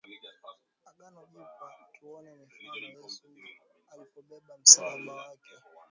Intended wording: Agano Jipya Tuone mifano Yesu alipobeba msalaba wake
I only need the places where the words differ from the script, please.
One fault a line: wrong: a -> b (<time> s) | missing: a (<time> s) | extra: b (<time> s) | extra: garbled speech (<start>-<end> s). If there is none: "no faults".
no faults